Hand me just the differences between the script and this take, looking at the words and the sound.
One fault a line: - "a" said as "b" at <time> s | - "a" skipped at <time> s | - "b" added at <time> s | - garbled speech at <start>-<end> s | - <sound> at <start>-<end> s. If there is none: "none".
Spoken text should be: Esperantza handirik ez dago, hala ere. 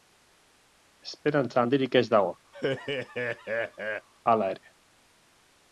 - laugh at 2.5-4.1 s